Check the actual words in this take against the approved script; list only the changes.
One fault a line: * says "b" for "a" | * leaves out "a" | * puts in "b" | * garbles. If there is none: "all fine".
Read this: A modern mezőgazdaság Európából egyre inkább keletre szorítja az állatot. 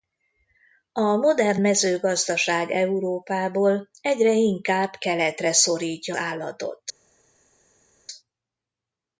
* leaves out "az"